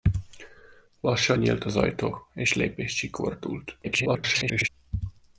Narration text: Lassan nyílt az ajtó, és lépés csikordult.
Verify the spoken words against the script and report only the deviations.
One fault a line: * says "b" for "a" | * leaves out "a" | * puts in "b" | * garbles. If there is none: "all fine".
* garbles